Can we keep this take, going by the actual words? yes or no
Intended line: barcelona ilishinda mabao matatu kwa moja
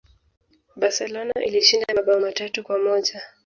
yes